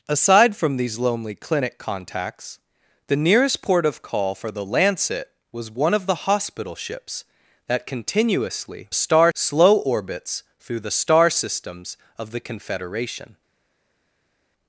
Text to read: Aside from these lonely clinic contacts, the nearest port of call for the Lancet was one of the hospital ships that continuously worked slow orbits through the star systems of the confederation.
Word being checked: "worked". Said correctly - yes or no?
no